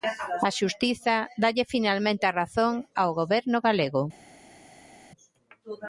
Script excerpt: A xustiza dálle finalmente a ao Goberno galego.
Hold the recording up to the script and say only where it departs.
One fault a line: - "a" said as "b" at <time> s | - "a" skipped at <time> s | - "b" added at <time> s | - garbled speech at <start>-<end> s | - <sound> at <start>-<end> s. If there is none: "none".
- "razón" added at 2.4 s